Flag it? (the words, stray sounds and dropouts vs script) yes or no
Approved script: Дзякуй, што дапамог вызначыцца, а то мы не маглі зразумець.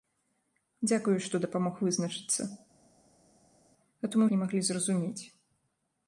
no